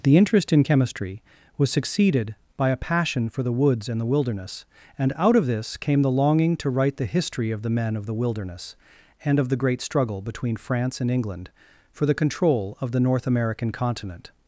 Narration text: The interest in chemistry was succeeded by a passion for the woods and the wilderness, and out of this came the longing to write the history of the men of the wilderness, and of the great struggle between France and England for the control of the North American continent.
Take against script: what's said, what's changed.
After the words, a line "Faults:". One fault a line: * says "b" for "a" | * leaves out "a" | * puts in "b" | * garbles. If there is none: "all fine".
The interest in chemistry was succeeded by a passion for the woods and the wilderness, and out of this came the longing to write the history of the men of the wilderness, and of the great struggle between France and England for the control of the North American continent.
Faults:
all fine